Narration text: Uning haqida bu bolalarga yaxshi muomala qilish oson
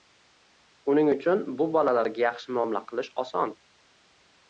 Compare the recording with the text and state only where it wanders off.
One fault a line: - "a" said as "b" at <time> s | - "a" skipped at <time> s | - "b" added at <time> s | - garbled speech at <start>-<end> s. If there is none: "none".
- "haqida" said as "uchun" at 1.1 s